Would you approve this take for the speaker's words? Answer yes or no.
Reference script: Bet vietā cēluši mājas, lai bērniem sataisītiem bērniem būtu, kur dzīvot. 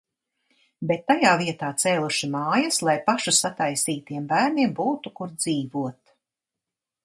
no